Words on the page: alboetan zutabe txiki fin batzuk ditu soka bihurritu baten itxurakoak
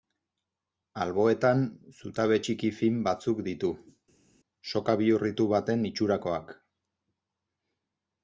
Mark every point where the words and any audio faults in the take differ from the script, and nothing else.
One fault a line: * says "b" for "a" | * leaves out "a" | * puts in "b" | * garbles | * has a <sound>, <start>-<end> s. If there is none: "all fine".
all fine